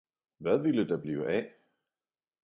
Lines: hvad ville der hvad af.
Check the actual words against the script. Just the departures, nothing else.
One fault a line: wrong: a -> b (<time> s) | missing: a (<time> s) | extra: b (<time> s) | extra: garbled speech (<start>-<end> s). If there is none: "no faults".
wrong: hvad -> blive (1.0 s)